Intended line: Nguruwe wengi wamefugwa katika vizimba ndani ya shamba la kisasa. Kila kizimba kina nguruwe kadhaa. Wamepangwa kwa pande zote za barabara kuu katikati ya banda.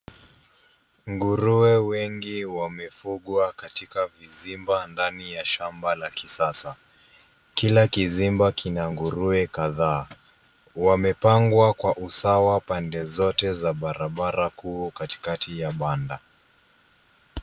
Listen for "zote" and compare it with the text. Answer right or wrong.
right